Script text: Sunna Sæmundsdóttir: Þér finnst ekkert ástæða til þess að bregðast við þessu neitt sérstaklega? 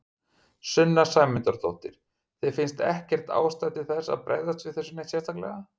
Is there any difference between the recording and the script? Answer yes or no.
no